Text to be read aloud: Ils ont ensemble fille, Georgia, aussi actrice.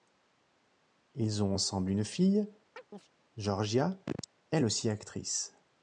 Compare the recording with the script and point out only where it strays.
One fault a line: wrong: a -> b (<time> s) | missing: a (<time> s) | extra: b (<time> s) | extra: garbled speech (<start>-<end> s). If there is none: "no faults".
extra: une (1.9 s)
extra: elle (4.5 s)